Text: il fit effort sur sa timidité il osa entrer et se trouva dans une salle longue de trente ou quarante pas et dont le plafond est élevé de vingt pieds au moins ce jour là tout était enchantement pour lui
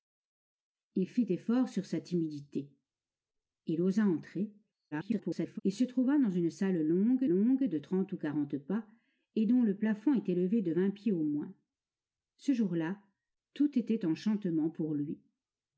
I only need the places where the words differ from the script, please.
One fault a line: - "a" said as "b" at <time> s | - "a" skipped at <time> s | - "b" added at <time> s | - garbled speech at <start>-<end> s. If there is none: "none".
- garbled speech at 4.9-5.6 s
- "longue" added at 7.3 s